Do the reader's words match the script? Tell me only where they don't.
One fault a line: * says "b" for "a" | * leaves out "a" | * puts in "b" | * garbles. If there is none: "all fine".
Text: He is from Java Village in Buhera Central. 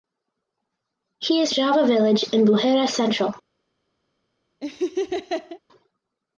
* leaves out "from"